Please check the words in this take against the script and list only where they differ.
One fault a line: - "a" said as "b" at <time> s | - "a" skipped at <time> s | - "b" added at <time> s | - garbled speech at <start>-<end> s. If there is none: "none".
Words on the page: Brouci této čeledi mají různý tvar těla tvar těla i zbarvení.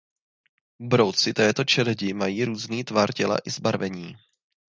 - "tvar těla" skipped at 3.4 s